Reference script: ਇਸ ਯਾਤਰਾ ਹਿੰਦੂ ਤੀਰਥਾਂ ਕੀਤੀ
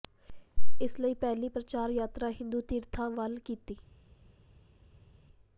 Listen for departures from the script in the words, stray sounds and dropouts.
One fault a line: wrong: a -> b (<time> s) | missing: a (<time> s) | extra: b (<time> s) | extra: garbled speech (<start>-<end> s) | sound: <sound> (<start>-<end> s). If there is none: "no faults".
extra: ਲਈ ਪਹਿਲੀ ਪ੍ਰਚਾਰ (1.0 s)
extra: ਵੱਲ (3.1 s)